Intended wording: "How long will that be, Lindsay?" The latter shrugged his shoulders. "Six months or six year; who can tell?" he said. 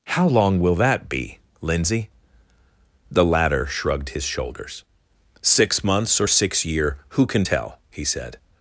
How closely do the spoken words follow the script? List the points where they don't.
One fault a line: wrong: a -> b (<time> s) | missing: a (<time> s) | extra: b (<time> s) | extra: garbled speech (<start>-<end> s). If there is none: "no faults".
no faults